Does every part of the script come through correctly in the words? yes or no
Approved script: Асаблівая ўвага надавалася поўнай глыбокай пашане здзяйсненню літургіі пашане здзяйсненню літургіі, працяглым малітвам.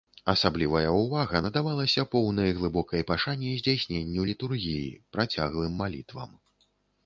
no